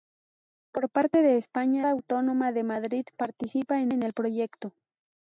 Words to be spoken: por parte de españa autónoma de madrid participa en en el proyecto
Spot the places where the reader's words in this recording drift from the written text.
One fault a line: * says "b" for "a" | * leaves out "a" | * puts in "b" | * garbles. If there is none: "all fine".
all fine